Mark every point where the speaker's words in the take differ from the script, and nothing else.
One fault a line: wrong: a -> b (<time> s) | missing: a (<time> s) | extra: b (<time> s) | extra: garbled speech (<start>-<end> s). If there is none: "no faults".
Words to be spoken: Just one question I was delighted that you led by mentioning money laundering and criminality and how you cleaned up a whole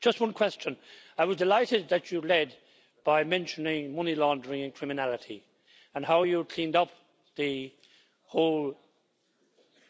wrong: a -> the (7.3 s)